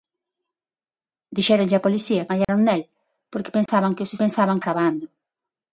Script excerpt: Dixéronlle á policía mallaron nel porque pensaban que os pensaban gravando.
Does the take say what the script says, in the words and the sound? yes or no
no